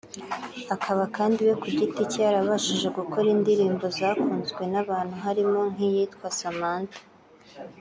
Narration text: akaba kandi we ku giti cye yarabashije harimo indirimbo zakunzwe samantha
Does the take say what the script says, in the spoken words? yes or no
no